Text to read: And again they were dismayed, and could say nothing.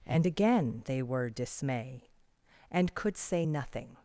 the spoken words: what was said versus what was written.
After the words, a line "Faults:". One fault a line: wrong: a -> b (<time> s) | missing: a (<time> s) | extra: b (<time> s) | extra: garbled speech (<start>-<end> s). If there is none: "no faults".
And again they were dismay, and could say nothing.
Faults:
wrong: dismayed -> dismay (1.3 s)